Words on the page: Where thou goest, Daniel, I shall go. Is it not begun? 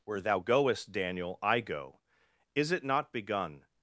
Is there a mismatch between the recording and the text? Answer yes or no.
yes